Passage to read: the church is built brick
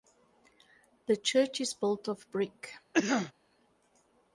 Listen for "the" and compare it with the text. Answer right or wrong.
right